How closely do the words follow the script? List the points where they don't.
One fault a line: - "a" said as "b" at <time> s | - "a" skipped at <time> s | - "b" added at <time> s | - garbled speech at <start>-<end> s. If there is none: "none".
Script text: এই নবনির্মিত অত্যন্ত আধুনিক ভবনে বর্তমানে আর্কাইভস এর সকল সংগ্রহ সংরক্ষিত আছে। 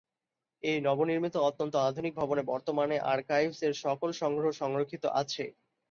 none